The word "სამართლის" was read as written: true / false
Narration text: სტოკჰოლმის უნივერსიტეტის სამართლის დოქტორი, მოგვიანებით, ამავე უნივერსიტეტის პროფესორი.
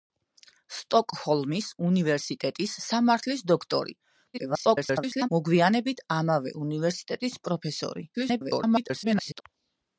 true